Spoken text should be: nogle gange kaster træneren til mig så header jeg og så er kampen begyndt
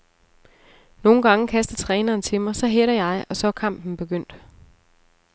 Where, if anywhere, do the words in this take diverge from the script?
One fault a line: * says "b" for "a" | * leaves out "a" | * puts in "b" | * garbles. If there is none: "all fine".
all fine